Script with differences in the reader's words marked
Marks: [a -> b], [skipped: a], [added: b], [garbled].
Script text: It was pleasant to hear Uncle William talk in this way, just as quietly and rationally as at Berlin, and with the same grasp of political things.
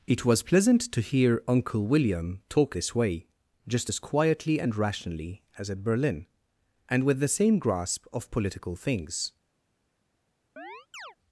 It was pleasant to hear Uncle William talk [skipped: in] this way, just as quietly and rationally as at Berlin, and with the same grasp of political things.